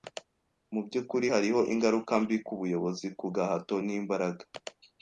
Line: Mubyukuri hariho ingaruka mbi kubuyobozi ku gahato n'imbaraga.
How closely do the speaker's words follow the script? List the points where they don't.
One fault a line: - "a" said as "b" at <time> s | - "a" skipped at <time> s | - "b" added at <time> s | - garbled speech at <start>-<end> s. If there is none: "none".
none